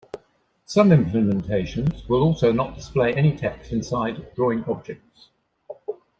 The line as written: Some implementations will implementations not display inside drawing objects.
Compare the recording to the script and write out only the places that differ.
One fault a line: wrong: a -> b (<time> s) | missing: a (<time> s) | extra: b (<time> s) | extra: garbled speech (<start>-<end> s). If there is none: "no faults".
wrong: implementations -> also (2.2 s)
extra: any text (3.1 s)